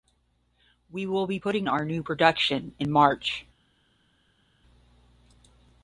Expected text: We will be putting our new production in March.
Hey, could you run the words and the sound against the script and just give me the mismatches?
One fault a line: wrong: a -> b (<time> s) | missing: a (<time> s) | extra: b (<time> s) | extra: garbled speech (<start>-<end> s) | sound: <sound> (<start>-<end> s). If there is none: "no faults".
no faults